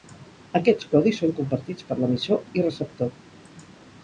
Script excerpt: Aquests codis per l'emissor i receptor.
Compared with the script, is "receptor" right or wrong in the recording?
right